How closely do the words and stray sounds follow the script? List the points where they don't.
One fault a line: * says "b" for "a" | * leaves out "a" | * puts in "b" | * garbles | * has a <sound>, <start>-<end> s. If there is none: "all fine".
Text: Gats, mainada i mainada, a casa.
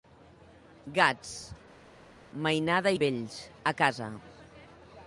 * says "vells" for "mainada"